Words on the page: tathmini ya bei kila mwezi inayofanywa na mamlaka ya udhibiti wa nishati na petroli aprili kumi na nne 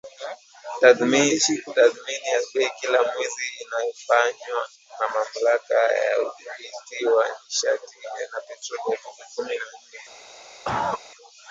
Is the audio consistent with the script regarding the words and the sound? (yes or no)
no